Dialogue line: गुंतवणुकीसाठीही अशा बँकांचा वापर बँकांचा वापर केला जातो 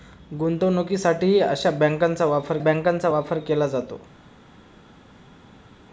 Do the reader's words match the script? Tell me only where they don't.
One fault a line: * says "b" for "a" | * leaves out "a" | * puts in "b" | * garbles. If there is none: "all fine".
all fine